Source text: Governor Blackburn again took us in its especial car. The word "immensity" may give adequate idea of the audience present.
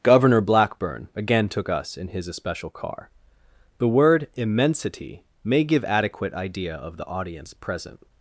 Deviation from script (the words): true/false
true